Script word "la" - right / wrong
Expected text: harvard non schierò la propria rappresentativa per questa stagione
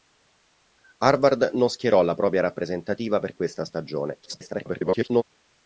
right